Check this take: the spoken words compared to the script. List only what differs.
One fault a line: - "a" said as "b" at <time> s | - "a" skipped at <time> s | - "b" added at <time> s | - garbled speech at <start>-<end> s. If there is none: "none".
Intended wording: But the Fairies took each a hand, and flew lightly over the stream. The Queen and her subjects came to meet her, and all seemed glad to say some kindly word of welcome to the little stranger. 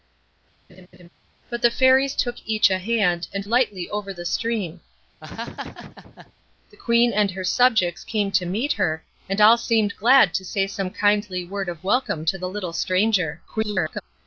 - "flew" skipped at 3.4 s
- garbled speech at 13.5-14.0 s